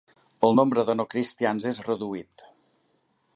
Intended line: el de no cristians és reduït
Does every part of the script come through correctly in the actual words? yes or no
no